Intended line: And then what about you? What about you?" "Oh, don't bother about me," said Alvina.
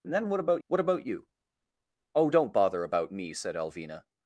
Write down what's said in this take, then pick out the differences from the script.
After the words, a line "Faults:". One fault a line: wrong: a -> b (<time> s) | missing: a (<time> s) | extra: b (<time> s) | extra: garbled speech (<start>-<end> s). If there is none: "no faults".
And then what about? What about you?" "Oh, don't bother about me," said Alvina.
Faults:
missing: you (0.6 s)